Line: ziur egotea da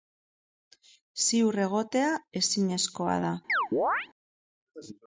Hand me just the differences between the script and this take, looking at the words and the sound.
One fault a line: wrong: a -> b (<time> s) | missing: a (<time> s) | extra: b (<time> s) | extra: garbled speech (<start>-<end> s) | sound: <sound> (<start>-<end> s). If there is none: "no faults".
extra: ezinezkoa (2.4 s)
sound: chirp (3.5-4.1 s)